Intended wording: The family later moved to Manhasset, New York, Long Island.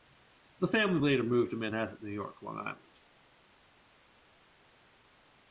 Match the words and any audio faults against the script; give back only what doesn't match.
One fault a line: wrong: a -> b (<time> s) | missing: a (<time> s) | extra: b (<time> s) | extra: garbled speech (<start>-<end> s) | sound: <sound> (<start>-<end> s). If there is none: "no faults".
no faults